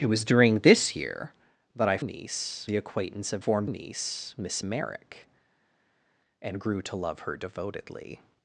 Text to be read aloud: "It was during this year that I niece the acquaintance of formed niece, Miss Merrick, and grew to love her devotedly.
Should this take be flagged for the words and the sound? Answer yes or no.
no